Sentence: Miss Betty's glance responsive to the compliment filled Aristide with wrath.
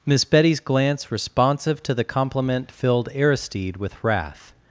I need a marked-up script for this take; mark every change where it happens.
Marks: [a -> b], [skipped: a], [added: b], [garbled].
Miss Betty's glance responsive to the compliment filled Aristide with wrath.